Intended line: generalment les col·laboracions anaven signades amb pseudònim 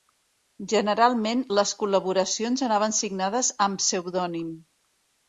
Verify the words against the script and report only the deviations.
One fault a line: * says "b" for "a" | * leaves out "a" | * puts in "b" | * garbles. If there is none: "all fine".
all fine